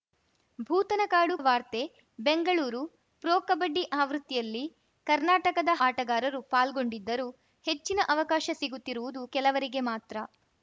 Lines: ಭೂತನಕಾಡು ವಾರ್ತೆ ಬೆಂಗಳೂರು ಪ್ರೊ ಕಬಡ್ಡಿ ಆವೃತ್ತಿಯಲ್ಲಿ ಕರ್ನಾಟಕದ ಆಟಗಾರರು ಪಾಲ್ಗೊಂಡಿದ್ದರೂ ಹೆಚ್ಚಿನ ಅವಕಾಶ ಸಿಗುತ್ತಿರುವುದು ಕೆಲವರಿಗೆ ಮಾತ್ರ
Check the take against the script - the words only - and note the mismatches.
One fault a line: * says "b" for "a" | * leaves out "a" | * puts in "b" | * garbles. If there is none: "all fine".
all fine